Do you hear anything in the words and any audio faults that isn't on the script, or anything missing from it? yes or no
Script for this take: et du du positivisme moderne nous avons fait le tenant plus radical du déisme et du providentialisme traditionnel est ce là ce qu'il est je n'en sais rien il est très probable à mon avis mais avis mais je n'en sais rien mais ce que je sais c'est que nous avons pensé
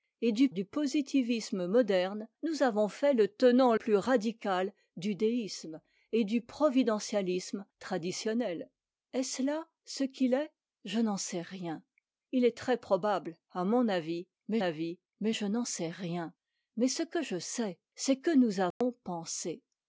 yes